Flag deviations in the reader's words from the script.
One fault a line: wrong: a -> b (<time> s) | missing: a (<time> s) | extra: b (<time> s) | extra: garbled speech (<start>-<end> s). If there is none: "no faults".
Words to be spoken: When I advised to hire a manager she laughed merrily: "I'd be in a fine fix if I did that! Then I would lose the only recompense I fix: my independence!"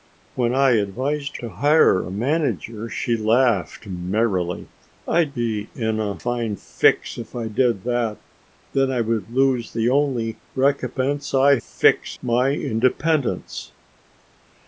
no faults